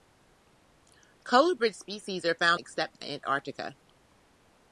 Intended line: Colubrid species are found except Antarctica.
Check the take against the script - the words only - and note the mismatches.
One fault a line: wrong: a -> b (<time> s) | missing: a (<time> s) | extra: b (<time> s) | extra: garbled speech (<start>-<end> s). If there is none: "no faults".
no faults